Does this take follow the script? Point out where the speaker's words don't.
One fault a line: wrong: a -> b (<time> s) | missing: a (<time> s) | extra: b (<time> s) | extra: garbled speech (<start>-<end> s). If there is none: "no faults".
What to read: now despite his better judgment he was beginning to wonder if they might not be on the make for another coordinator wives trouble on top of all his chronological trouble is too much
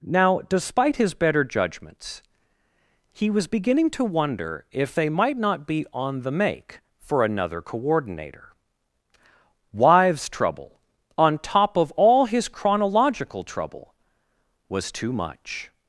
wrong: judgment -> judgments (1.4 s)
wrong: is -> was (14.7 s)